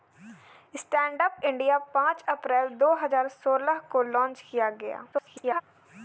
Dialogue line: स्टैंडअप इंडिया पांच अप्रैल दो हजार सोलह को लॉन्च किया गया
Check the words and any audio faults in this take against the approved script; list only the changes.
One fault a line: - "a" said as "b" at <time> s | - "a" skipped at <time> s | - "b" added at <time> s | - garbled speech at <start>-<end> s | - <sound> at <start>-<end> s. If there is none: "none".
- garbled speech at 5.1-5.6 s